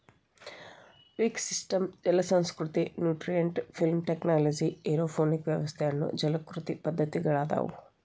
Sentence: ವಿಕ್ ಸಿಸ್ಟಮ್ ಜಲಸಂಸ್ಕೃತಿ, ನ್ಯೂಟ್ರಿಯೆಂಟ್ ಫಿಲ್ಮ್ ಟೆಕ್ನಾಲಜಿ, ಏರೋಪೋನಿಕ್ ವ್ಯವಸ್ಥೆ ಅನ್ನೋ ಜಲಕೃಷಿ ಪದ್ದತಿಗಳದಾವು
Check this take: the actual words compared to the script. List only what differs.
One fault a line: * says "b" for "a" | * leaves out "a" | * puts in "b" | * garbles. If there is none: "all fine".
all fine